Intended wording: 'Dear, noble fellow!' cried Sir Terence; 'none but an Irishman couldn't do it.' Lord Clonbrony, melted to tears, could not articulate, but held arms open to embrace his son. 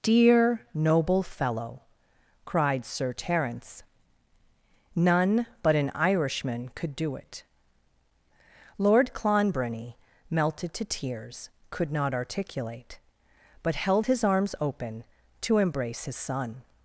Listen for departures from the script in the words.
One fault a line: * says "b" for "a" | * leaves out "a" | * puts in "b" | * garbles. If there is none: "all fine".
* says "could" for "couldn't"
* puts in "his"